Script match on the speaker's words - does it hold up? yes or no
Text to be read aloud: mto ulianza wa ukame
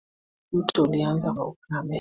yes